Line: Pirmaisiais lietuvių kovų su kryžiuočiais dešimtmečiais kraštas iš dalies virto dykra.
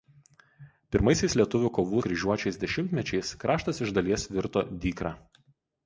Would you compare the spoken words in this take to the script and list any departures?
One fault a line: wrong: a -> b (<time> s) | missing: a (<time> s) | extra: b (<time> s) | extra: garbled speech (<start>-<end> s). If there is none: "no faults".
missing: su (2.0 s)